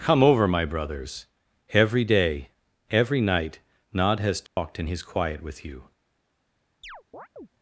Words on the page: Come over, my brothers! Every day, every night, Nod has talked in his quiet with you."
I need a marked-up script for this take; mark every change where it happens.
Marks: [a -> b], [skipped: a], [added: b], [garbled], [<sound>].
Come over, my brothers! Every day, every night, Nod has talked [dropout] in his quiet with you." [chirp]